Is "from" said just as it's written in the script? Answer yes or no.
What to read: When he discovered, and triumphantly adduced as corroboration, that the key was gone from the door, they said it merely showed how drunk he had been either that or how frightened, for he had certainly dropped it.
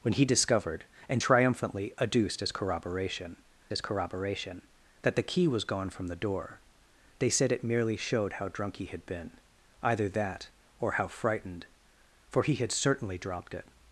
yes